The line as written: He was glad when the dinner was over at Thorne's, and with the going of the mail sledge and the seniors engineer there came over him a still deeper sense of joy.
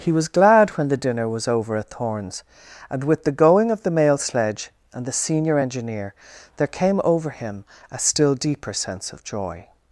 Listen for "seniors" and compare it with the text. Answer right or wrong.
wrong